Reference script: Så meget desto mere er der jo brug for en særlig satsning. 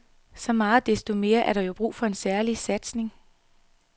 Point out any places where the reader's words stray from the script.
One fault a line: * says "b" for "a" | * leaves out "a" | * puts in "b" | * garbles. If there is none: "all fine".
all fine